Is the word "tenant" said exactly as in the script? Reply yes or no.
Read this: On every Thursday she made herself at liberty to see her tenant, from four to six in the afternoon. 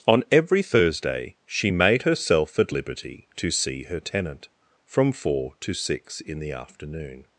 yes